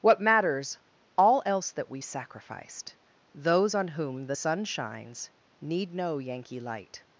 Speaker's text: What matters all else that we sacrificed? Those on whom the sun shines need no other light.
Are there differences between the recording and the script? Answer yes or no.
yes